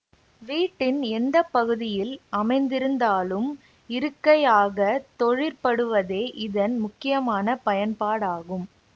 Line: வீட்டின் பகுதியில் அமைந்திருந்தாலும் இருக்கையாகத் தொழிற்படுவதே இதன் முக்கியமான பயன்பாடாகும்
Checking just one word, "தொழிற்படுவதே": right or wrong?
right